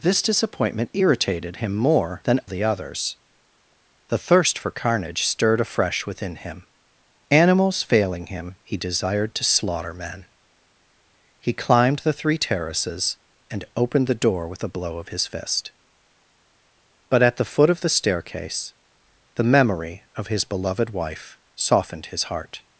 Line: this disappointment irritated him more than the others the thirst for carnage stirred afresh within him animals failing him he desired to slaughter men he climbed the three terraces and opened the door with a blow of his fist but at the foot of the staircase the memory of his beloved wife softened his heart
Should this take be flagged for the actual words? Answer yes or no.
no